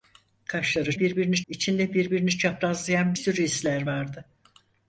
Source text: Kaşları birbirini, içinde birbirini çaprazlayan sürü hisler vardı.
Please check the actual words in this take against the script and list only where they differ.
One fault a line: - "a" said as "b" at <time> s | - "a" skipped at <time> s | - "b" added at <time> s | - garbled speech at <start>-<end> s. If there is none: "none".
none